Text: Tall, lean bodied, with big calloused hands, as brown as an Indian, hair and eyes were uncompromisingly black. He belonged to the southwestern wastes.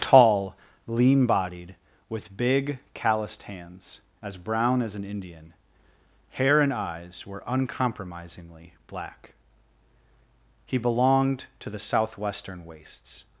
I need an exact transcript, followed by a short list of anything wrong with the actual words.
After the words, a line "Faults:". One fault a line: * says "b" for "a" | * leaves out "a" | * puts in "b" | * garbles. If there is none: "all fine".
Tall, lean bodied, with big calloused hands, as brown as an Indian, hair and eyes were uncompromisingly black. He belonged to the southwestern wastes.
Faults:
all fine